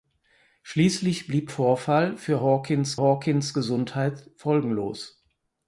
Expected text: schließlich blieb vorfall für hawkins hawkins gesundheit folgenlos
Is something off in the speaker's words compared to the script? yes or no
no